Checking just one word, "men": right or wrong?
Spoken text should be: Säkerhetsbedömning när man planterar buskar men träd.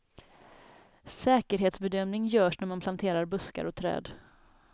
wrong